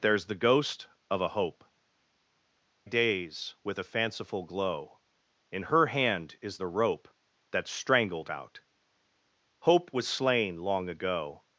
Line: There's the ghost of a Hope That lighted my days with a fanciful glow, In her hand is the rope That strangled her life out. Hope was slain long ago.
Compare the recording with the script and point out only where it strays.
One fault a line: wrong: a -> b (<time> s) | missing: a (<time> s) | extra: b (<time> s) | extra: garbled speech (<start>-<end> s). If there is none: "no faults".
missing: That lighted my (1.6 s)
missing: her life (8.3 s)